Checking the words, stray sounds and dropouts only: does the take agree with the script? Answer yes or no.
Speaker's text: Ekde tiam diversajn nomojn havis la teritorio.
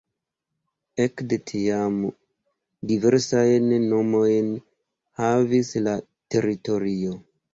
yes